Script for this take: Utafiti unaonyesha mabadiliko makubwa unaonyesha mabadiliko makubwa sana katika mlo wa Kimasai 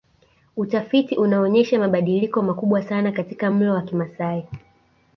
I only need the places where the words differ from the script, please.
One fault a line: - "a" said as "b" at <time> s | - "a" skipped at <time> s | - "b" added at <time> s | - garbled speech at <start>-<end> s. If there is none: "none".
- "unaonyesha mabadiliko makubwa" skipped at 2.8 s